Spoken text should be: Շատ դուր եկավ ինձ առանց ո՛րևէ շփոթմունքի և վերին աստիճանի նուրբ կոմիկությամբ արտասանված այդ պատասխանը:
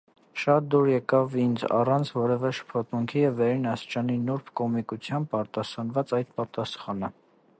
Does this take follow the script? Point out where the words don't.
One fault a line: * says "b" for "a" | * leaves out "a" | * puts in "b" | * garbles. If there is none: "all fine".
all fine